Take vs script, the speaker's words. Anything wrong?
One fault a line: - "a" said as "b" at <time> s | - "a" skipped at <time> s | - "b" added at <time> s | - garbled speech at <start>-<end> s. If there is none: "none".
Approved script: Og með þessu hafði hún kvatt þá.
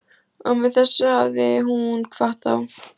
none